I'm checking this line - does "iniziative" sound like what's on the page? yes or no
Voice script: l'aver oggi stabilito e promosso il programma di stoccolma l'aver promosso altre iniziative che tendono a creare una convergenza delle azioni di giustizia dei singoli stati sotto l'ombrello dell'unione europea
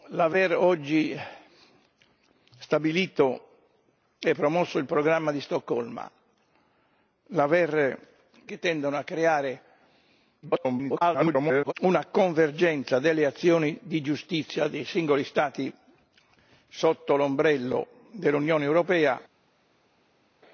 no